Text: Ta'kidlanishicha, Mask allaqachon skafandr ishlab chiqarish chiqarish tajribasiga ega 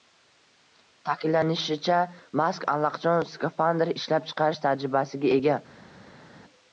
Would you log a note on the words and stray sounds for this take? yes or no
yes